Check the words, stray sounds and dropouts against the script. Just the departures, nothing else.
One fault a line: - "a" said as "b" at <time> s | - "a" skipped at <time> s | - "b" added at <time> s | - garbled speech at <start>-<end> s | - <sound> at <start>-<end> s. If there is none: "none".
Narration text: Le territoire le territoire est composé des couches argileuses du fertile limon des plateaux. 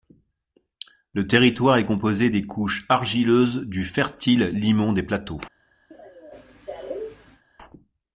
- "le territoire" skipped at 1.8 s
- cough at 5.9-7.4 s